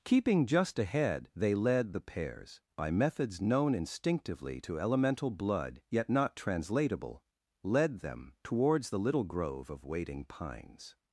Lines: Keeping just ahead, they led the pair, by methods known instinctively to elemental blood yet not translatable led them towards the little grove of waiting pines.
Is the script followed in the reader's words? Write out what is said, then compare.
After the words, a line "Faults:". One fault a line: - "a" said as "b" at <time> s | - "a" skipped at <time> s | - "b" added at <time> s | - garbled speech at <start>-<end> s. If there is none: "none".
Keeping just ahead, they led the pairs, by methods known instinctively to elemental blood yet not translatable led them towards the little grove of waiting pines.
Faults:
- "pair" said as "pairs" at 2.0 s